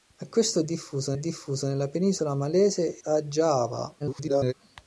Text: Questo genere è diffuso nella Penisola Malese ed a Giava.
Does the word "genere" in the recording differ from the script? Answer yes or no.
yes